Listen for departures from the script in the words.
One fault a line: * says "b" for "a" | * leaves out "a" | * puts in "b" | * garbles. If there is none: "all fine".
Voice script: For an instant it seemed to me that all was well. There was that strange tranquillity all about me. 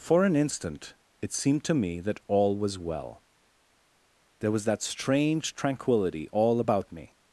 all fine